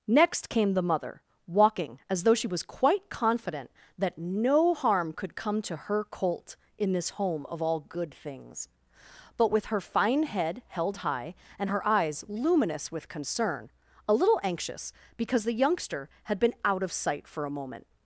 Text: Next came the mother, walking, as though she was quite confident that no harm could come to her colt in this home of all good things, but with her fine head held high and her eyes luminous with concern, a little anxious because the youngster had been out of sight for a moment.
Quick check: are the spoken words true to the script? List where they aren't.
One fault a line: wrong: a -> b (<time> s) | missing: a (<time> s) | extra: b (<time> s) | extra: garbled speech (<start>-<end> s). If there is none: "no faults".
no faults